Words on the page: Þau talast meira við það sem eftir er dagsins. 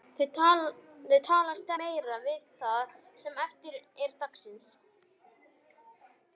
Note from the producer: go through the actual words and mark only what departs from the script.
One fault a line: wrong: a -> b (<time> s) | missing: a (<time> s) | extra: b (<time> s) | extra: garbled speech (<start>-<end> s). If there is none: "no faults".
no faults